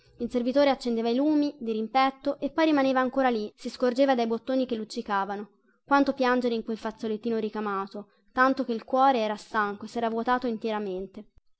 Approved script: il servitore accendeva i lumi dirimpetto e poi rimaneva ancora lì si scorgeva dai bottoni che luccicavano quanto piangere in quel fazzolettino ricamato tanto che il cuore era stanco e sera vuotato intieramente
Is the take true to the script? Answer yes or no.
yes